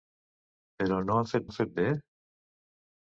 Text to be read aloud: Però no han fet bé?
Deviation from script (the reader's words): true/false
true